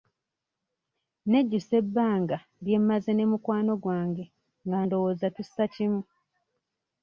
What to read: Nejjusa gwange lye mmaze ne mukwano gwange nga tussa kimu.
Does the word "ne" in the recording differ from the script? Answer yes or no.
no